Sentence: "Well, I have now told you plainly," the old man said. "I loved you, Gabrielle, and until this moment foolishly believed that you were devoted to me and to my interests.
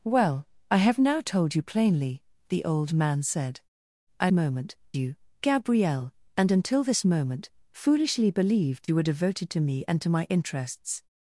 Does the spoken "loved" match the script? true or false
false